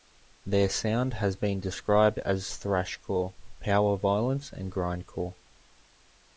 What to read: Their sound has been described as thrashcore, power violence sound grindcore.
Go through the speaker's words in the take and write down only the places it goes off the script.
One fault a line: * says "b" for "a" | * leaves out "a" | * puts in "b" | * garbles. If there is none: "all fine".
* says "and" for "sound"